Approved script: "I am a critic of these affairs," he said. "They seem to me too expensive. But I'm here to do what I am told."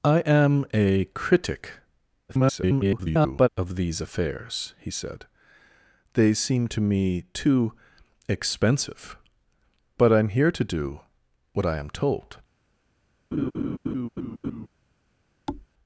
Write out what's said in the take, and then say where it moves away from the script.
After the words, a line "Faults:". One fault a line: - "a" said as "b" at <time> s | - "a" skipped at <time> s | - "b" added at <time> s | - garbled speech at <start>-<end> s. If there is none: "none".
"I am a critic [garbled] of these affairs," he said. "They seem to me too expensive. But I'm here to do what I am told."
Faults:
- garbled speech at 2.3-3.5 s